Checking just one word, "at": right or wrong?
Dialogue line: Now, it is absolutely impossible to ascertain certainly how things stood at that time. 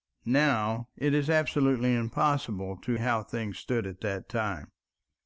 right